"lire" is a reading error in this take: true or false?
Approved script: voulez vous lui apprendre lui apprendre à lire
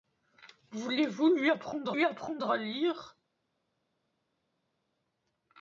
false